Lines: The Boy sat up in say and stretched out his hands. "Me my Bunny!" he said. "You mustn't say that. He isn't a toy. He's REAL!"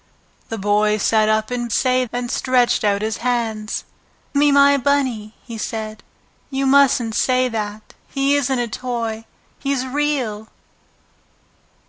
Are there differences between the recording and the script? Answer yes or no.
no